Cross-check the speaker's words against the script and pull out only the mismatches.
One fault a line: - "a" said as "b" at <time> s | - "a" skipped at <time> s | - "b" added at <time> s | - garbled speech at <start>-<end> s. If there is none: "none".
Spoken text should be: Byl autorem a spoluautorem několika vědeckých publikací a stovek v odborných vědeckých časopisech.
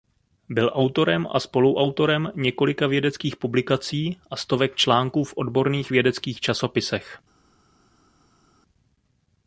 - "článků" added at 4.8 s